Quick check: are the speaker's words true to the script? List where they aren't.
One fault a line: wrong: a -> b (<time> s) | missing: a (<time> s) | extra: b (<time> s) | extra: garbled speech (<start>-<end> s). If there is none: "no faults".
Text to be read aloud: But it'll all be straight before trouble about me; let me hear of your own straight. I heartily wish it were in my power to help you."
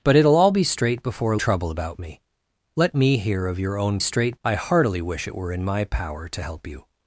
no faults